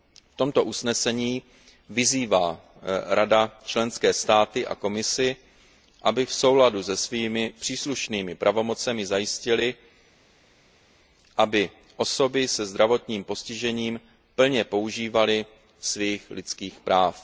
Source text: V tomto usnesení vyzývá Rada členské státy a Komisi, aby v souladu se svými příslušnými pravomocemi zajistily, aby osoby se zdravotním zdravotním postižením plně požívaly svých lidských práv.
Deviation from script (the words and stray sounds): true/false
true